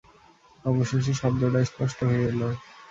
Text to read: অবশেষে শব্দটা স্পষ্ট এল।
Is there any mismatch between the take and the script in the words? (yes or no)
yes